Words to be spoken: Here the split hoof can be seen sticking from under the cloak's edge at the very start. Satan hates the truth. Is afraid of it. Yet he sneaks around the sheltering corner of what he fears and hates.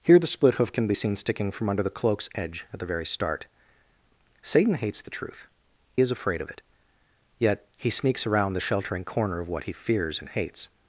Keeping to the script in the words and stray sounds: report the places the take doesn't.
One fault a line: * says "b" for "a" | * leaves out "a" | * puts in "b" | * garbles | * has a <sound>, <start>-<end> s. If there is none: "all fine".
all fine